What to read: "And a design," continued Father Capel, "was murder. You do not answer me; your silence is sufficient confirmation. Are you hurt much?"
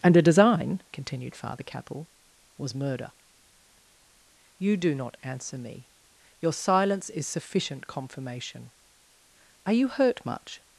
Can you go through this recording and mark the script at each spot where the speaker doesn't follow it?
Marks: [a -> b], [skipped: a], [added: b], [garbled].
"And a design," continued Father Capel, "was murder. You do not answer me; your silence is sufficient confirmation. Are you hurt much?"